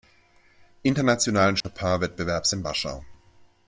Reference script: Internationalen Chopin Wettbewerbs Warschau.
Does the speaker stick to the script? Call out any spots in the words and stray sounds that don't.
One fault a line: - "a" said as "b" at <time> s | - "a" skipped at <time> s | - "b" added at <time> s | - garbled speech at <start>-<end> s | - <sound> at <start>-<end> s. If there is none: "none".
- dropout at 1.6-1.6 s
- "in" added at 2.5 s